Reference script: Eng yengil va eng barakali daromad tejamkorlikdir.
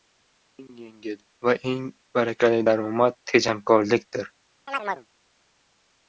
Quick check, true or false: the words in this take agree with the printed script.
true